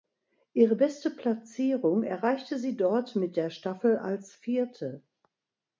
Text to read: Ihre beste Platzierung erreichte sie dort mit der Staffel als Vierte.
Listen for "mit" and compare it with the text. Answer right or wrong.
right